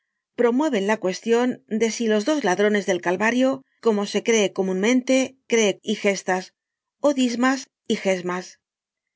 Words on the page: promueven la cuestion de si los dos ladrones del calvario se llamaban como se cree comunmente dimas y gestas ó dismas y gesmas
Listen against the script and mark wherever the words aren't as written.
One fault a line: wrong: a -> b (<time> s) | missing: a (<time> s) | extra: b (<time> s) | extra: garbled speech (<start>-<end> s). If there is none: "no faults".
missing: se llamaban (3.6 s)
wrong: dimas -> cree (5.5 s)